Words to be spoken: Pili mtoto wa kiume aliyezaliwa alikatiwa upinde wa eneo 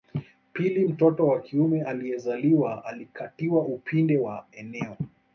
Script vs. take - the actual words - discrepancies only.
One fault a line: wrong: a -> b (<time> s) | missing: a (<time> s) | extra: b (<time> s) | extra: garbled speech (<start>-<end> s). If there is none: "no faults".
no faults